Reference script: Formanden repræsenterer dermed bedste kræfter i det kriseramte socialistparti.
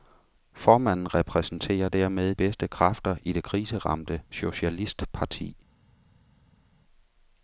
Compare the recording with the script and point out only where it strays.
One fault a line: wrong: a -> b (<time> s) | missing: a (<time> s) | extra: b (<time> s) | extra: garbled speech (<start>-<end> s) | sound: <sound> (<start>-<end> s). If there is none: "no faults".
no faults